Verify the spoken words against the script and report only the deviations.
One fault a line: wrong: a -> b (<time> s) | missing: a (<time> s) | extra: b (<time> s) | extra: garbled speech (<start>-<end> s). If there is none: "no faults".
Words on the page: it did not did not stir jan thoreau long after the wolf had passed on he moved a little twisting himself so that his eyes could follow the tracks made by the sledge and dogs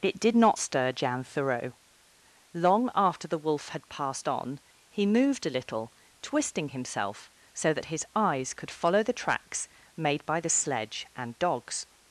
missing: did not (0.6 s)